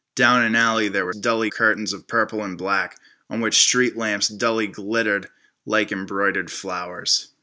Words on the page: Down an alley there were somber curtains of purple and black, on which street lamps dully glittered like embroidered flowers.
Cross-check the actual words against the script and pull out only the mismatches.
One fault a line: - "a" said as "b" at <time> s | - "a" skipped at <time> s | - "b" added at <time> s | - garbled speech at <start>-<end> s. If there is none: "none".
- "somber" said as "dully" at 1.1 s